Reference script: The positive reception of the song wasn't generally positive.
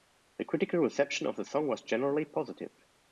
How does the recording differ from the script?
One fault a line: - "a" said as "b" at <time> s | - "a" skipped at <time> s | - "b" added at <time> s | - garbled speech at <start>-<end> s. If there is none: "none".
- "positive" said as "critical" at 0.5 s
- "wasn't" said as "was" at 1.7 s